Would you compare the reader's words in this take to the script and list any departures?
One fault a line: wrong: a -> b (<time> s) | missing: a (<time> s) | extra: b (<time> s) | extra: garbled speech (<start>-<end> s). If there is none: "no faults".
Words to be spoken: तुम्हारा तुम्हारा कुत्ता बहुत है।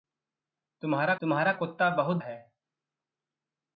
no faults